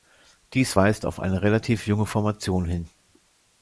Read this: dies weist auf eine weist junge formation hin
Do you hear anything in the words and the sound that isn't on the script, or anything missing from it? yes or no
yes